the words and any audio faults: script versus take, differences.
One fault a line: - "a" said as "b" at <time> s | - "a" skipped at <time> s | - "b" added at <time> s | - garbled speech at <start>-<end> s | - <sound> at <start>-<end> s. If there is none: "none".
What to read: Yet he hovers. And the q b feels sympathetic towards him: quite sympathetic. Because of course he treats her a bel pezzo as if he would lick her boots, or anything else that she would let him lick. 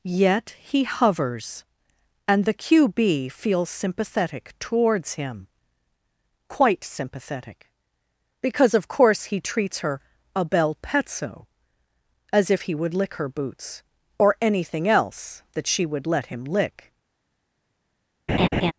- laugh at 18.3-18.7 s